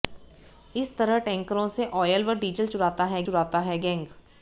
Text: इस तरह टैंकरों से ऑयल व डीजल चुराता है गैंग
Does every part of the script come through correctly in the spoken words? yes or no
no